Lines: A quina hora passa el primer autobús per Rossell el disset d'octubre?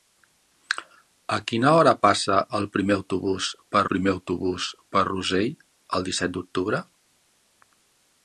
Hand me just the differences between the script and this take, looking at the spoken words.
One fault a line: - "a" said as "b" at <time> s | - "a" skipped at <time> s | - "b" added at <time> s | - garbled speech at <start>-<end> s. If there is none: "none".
- "primer autobús per" added at 3.9 s